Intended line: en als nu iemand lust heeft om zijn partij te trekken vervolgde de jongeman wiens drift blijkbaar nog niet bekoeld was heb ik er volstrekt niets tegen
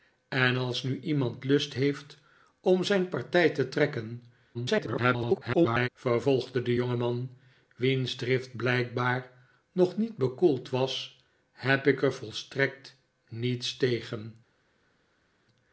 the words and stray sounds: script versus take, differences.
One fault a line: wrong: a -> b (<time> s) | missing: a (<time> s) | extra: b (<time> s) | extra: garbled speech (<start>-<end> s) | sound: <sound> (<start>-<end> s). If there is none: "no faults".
extra: garbled speech (4.5-5.9 s)